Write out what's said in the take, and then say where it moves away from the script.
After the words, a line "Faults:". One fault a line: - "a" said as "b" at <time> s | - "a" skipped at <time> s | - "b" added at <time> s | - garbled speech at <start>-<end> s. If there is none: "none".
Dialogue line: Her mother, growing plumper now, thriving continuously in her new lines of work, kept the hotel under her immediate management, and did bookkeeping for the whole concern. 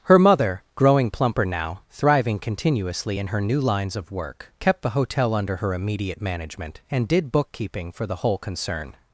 Her mother, growing plumper now, thriving continuously in her new lines of work, kept the hotel under her immediate management, and did bookkeeping for the whole concern.
Faults:
none